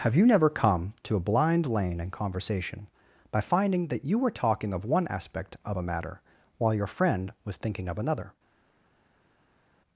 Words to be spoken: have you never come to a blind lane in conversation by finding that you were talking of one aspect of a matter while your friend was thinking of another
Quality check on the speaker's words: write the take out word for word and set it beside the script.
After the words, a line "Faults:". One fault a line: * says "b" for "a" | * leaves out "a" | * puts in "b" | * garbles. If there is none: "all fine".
have you never come to a blind lane in conversation by finding that you were talking of one aspect of a matter while your friend was thinking of another
Faults:
all fine